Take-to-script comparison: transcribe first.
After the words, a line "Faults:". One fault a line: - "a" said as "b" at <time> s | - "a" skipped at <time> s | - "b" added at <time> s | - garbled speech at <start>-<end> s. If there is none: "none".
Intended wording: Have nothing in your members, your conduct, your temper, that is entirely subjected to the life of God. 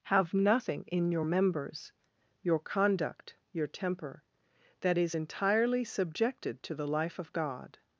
Have nothing in your members, your conduct, your temper, that is entirely subjected to the life of God.
Faults:
none